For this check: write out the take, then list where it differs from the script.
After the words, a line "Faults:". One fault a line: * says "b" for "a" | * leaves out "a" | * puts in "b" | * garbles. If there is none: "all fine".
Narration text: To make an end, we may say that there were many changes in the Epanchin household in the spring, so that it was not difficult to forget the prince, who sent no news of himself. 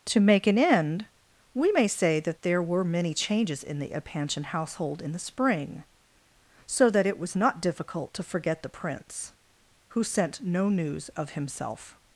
To make an end, we may say that there were many changes in the Epanchin household in the spring, so that it was not difficult to forget the prince, who sent no news of himself.
Faults:
all fine